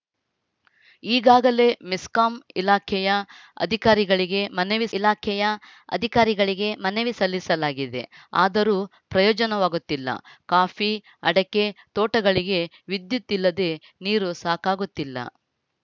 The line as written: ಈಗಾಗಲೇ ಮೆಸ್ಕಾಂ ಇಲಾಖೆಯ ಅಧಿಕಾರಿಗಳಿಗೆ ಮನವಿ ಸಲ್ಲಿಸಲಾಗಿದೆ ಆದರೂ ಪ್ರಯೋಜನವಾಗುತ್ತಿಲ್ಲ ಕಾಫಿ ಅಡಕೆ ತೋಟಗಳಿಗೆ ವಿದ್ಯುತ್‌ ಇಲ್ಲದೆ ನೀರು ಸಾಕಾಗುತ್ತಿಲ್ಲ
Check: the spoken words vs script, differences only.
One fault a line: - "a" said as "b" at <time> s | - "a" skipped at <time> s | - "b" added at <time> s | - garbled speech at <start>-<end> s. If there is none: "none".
- "ಇಲಾಖೆಯ ಅಧಿಕಾರಿಗಳಿಗೆ ಮನವಿ" added at 5.0 s